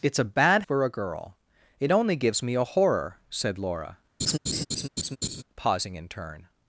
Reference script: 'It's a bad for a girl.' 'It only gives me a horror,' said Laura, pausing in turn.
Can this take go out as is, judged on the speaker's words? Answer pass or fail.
pass